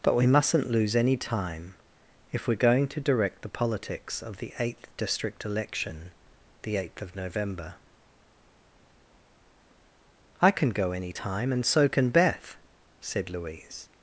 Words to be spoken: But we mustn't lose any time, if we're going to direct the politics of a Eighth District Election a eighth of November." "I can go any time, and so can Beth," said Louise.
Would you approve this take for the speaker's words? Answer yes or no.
no